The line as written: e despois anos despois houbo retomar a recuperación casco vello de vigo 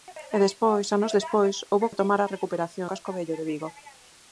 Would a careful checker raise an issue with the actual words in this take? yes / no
no